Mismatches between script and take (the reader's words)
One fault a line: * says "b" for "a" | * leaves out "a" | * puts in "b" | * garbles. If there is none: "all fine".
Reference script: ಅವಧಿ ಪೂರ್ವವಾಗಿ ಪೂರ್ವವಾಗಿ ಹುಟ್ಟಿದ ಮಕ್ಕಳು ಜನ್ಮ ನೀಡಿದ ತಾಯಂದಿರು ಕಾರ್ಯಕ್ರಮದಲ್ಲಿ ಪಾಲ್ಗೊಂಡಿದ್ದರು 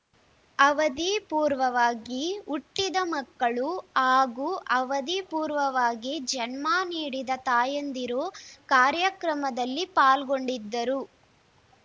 * leaves out "ಪೂರ್ವವಾಗಿ"
* puts in "ಹಾಗೂ ಅವಧಿ ಪೂರ್ವವಾಗಿ"